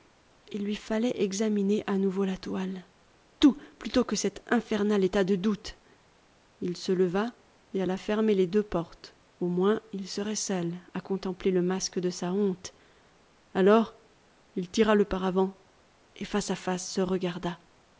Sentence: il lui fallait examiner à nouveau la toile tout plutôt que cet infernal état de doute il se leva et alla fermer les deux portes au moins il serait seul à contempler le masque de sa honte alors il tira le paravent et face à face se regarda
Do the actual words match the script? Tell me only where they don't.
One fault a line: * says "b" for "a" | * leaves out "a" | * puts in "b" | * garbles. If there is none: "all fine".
all fine